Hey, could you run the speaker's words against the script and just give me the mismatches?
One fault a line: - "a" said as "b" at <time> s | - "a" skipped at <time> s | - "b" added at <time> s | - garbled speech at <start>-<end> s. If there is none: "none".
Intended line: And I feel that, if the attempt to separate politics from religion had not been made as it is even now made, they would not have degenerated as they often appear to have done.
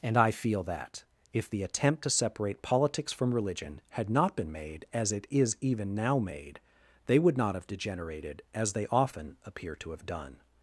none